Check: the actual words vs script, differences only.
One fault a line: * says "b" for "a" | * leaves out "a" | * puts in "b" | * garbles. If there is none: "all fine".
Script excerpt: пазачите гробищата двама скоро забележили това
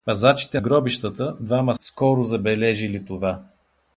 all fine